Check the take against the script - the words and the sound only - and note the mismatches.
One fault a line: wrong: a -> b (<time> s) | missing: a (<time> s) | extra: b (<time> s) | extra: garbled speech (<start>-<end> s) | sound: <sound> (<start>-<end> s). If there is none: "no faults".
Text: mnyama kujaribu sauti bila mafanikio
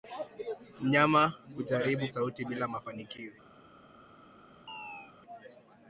sound: chirp (4.7-5.1 s)